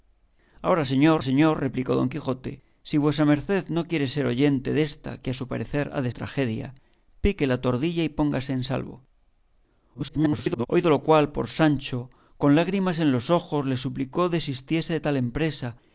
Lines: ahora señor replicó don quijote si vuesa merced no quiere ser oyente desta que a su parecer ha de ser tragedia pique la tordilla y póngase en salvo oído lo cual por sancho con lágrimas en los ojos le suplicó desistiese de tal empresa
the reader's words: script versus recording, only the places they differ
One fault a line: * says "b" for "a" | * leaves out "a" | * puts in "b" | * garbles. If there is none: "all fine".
* puts in "señor"
* leaves out "ser"
* garbles